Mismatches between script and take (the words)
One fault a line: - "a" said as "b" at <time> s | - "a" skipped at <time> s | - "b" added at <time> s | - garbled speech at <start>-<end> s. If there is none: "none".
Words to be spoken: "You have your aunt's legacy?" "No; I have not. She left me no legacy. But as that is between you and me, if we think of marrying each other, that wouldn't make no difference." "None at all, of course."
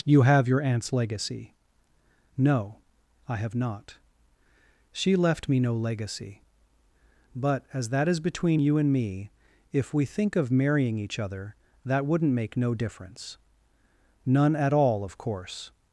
none